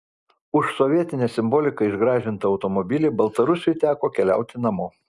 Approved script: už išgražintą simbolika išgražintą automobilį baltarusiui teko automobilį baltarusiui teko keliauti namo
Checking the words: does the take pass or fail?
fail